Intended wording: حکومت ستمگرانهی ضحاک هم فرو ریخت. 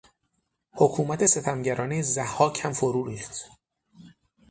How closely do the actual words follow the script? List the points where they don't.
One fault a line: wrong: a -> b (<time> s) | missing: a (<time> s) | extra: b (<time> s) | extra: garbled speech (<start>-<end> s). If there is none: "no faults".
no faults